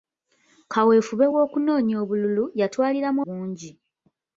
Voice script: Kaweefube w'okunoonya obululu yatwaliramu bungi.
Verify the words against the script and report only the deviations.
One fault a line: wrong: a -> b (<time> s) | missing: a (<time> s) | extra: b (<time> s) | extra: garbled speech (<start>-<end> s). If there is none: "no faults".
no faults